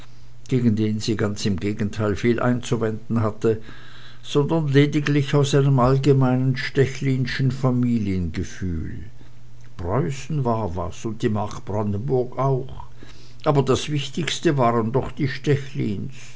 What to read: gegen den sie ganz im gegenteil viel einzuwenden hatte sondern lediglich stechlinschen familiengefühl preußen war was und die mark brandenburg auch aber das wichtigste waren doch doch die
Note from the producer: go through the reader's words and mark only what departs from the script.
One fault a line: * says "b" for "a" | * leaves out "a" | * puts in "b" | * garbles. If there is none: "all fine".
* puts in "aus einem allgemeinen"
* leaves out "doch"